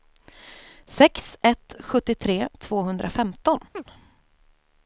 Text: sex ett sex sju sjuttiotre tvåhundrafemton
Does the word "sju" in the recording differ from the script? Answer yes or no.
yes